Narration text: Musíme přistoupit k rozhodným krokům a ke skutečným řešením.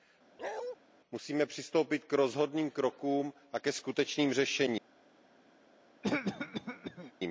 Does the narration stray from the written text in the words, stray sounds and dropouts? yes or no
yes